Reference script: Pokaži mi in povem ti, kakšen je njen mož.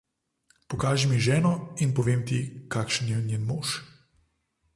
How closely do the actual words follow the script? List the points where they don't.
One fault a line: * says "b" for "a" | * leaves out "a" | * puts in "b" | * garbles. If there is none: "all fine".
* puts in "ženo"